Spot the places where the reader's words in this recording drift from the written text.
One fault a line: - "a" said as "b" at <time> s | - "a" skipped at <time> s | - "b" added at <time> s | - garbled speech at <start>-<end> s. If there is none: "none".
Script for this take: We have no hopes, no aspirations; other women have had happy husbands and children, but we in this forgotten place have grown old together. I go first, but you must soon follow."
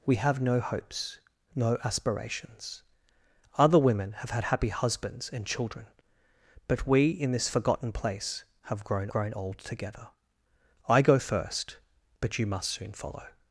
- "grown" added at 9.1 s